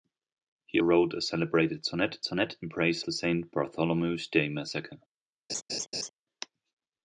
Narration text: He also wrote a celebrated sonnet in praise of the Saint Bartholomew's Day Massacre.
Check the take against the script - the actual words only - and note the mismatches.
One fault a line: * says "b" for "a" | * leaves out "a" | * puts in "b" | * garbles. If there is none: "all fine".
* leaves out "also"
* puts in "sonnet"
* leaves out "of"